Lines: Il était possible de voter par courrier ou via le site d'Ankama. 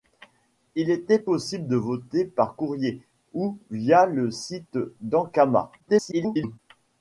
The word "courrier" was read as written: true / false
true